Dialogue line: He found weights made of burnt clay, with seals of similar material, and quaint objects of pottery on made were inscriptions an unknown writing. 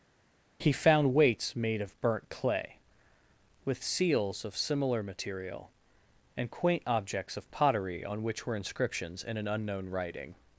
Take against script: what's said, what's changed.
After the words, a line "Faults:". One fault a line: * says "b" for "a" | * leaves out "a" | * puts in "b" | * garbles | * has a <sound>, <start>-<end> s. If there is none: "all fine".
He found weights made of burnt clay, with seals of similar material, and quaint objects of pottery on which were inscriptions in an unknown writing.
Faults:
* says "which" for "made"
* puts in "in"